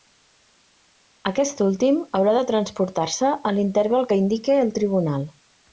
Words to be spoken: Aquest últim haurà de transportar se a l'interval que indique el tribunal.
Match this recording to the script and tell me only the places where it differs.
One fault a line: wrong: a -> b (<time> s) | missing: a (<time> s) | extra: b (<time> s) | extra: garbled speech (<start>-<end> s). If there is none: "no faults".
no faults